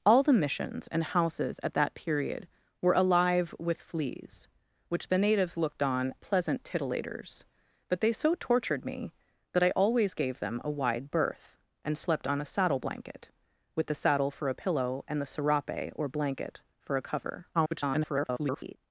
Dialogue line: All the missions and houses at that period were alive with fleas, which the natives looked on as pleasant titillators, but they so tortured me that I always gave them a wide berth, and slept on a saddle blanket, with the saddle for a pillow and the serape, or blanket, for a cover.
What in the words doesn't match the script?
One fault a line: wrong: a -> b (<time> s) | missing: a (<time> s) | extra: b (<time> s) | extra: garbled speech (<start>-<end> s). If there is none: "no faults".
missing: as (6.1 s)
extra: garbled speech (17.5-18.8 s)